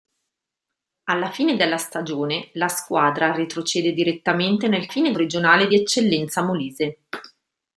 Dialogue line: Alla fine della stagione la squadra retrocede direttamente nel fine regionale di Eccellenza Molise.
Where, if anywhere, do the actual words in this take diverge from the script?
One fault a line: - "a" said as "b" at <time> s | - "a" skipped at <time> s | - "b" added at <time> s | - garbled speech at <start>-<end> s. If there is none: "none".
none